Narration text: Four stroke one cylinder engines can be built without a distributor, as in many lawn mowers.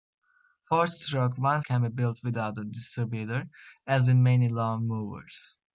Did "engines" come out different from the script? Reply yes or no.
yes